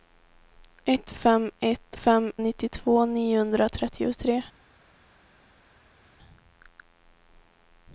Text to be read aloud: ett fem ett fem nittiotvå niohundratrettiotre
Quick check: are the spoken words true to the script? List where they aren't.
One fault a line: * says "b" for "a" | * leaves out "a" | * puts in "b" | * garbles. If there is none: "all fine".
all fine